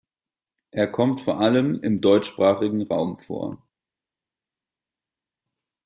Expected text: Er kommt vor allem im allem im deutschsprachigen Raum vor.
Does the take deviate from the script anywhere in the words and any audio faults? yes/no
yes